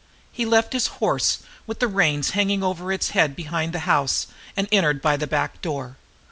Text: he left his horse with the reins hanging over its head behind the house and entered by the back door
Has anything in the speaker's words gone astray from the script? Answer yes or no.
no